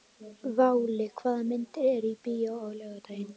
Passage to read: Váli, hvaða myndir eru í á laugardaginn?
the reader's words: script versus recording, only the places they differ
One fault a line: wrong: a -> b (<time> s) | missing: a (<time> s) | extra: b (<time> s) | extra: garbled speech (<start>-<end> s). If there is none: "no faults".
extra: bíó (2.3 s)